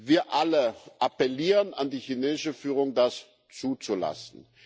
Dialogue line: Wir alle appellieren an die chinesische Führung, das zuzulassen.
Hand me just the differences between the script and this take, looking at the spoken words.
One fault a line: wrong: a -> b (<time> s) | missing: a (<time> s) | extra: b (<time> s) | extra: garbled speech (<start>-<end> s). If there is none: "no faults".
no faults